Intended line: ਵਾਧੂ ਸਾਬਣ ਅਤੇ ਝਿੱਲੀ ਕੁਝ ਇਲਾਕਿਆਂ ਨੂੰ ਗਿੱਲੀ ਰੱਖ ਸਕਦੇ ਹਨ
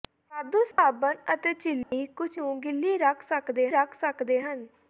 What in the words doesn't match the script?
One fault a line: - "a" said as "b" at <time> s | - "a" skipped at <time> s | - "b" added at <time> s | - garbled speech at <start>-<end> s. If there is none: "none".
- "ਇਲਾਕਿਆਂ" skipped at 2.3 s
- "ਰੱਖ ਸਕਦੇ" added at 3.7 s